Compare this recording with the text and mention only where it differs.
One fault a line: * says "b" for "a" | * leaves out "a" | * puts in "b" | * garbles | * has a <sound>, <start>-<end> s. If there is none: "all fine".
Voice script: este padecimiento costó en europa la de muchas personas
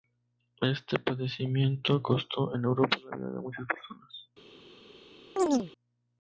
* puts in "vida"
* has a chirp, 5.4-5.7 s